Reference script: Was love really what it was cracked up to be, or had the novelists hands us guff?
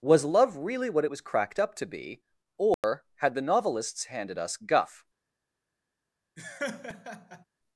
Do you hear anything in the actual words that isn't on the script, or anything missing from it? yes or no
yes